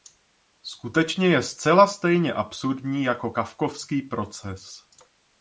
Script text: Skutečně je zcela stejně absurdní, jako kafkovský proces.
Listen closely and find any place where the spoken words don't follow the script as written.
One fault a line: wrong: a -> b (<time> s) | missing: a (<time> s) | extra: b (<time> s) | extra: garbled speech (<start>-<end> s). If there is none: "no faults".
no faults